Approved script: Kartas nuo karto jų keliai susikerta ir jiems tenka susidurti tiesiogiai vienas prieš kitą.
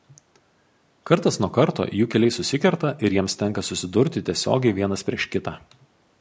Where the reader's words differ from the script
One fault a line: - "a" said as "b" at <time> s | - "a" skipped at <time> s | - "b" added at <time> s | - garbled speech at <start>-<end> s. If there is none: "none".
none